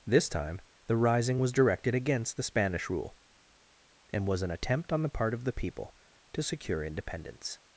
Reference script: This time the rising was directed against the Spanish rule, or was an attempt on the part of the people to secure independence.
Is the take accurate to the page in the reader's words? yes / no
no